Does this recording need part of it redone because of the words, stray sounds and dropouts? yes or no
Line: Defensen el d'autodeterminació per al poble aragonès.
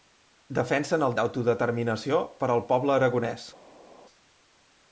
no